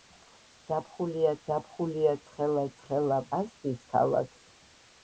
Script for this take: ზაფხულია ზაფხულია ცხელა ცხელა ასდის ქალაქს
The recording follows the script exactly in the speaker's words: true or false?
true